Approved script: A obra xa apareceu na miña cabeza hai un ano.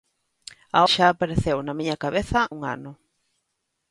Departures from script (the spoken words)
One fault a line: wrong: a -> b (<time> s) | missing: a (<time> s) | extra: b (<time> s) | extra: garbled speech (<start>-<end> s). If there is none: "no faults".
missing: obra (0.8 s)
missing: hai (2.4 s)